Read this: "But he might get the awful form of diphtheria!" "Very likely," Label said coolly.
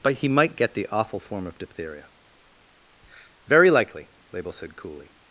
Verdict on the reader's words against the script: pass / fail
pass